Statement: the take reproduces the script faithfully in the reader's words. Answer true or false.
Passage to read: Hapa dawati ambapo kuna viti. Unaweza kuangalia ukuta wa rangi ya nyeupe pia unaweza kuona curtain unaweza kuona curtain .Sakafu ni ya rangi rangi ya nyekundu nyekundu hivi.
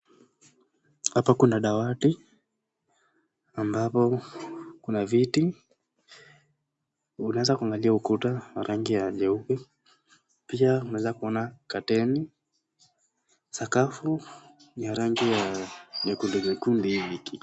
false